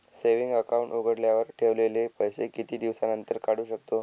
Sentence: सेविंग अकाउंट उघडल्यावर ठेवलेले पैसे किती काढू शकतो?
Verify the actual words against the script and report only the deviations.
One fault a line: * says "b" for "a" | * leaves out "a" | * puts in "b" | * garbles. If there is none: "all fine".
* puts in "दिवसानंतर"